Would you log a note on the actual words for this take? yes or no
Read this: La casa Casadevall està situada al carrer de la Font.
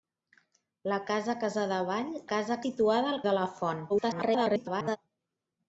yes